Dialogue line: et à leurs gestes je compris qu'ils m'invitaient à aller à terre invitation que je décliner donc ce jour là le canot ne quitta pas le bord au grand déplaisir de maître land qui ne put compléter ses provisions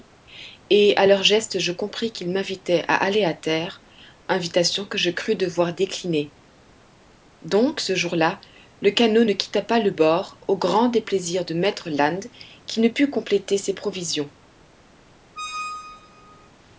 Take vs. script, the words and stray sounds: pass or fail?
fail